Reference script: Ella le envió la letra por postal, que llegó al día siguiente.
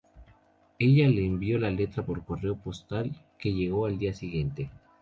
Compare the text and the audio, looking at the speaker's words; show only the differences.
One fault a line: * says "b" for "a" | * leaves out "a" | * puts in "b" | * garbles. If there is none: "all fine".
* puts in "correo"